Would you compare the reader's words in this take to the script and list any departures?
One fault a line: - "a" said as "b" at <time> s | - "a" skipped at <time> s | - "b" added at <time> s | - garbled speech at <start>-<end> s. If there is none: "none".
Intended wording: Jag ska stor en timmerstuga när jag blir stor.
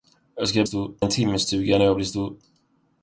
none